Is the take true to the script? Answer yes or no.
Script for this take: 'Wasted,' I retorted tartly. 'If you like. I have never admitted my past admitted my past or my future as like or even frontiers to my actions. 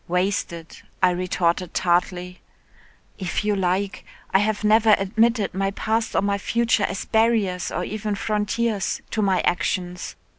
no